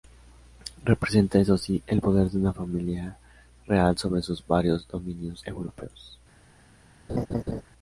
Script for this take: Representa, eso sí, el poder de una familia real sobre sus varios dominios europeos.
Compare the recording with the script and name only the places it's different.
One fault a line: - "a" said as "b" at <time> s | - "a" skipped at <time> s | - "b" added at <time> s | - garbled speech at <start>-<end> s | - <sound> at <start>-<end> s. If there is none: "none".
- laugh at 7.1-7.6 s